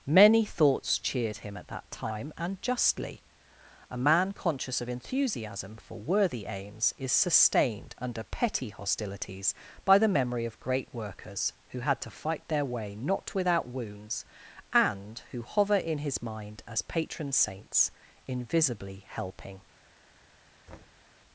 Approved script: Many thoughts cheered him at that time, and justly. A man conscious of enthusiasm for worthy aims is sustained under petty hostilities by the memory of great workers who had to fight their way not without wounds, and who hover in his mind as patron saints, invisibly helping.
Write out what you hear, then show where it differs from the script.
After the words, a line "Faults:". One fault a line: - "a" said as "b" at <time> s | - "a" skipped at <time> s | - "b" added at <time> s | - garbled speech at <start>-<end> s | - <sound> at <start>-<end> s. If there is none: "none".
Many thoughts cheered him at that time, and justly. A man conscious of enthusiasm for worthy aims is sustained under petty hostilities by the memory of great workers who had to fight their way not without wounds, and who hover in his mind as patron saints, invisibly helping.
Faults:
- thud at 20.7-21.1 s